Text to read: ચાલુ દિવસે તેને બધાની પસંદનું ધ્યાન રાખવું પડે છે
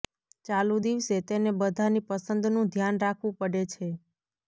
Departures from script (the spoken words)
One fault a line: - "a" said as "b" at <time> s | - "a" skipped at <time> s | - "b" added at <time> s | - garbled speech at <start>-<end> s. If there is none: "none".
none